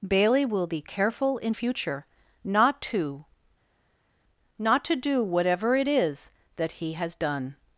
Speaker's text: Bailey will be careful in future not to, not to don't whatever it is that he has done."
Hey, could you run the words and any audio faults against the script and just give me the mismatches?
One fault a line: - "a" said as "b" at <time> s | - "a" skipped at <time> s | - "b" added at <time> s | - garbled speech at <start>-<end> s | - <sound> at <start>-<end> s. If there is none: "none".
- "don't" said as "do" at 5.0 s